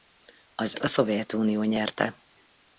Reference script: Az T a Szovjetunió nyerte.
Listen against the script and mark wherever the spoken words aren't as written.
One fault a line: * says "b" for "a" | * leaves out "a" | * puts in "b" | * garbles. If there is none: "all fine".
all fine